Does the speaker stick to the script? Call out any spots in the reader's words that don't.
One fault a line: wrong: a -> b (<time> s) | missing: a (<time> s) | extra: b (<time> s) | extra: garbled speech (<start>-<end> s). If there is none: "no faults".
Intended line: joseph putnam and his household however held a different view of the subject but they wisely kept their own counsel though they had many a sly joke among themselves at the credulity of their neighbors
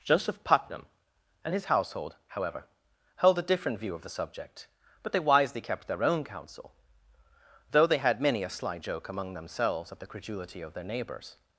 no faults